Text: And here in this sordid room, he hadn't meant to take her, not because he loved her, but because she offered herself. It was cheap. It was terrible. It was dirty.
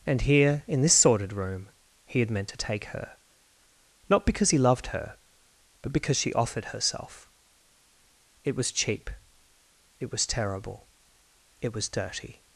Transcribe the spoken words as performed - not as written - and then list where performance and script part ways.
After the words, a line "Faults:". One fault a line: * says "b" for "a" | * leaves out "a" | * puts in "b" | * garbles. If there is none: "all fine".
And here in this sordid room, he had meant to take her, not because he loved her, but because she offered herself. It was cheap. It was terrible. It was dirty.
Faults:
* says "had" for "hadn't"